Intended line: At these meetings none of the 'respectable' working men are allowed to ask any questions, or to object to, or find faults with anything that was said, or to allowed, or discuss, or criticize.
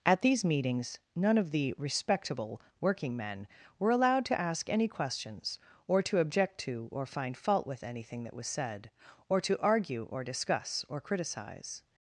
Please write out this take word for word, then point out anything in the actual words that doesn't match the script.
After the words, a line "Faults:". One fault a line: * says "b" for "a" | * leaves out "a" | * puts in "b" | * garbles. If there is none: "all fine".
At these meetings none of the 'respectable' working men were allowed to ask any questions, or to object to, or find fault with anything that was said, or to argue, or discuss, or criticize.
Faults:
* says "were" for "are"
* says "fault" for "faults"
* says "argue" for "allowed"